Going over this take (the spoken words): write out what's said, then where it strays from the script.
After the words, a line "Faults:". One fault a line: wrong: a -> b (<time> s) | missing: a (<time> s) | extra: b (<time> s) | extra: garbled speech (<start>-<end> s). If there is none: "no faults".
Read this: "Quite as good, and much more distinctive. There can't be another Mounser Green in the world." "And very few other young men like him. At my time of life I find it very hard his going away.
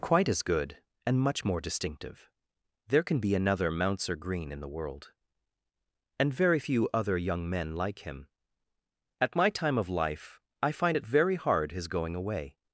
"Quite as good, and much more distinctive. There can be another Mounser Green in the world." "And very few other young men like him. At my time of life I find it very hard his going away.
Faults:
wrong: can't -> can (3.0 s)